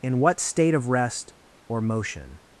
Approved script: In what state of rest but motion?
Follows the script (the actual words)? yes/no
no